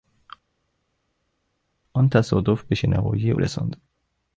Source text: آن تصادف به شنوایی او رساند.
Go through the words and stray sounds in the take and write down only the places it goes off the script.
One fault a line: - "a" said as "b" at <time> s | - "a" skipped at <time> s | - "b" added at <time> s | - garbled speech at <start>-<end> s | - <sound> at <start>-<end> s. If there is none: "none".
none